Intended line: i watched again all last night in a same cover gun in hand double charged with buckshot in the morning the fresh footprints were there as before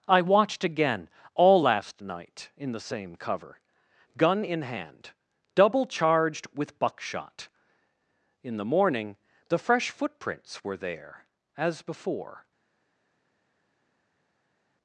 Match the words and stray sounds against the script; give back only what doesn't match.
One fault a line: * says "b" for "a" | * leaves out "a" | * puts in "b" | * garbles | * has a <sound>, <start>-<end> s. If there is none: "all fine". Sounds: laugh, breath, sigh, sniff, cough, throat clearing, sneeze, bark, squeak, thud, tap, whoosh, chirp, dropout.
* says "the" for "a"